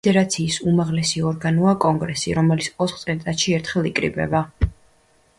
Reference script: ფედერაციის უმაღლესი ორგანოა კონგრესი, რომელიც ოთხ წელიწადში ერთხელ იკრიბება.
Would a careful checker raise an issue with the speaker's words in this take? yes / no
no